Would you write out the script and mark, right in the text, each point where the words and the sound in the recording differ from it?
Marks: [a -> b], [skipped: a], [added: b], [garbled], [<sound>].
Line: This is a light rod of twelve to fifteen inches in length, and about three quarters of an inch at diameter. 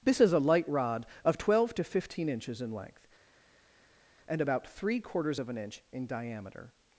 This is a light rod of twelve to fifteen inches in length, and about three quarters of an inch [at -> in] diameter.